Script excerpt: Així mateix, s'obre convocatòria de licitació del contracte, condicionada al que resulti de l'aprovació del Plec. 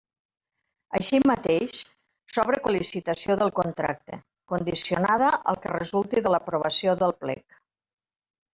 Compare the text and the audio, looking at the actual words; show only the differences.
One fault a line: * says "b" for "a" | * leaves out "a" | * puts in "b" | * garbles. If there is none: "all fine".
* leaves out "convocatòria"